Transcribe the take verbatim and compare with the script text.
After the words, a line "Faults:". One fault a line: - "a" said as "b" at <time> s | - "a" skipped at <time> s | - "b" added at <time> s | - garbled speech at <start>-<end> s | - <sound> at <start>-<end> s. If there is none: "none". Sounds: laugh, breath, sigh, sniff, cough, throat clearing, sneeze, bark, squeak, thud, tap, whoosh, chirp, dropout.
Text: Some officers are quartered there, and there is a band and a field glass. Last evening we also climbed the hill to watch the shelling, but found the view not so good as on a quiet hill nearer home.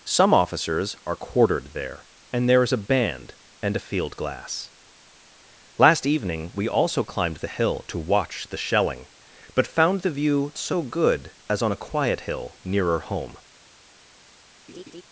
Some officers are quartered there, and there is a band and a field glass. Last evening we also climbed the hill to watch the shelling, but found the view so good as on a quiet hill nearer home.
Faults:
- "not" skipped at 10.5 s
- laugh at 14.7-15.0 s